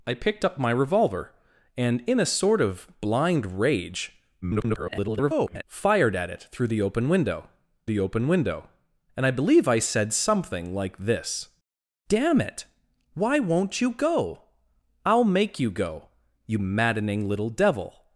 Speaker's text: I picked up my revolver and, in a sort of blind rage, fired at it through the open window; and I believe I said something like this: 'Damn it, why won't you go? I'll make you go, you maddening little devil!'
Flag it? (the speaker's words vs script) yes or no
yes